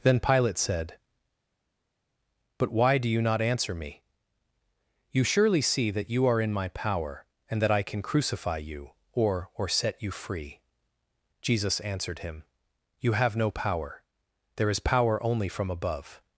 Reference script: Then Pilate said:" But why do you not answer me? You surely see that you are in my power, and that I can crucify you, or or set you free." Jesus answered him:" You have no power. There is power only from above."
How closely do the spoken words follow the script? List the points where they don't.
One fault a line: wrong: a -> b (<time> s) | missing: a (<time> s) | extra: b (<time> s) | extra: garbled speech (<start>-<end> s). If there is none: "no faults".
no faults